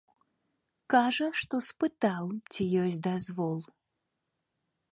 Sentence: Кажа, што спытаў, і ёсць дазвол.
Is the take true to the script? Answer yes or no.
no